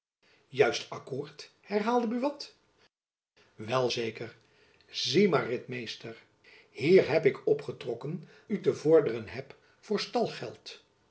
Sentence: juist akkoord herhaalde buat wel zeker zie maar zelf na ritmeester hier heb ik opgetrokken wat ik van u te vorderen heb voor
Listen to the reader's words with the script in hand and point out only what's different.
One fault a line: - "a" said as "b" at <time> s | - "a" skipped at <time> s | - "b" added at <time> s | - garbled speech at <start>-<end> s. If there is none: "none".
- "zelf na" skipped at 5.5 s
- "wat ik van" skipped at 8.3 s